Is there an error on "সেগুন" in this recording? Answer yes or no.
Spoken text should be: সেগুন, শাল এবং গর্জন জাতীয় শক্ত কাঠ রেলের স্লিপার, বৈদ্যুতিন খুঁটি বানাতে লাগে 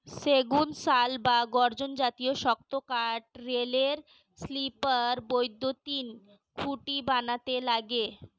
no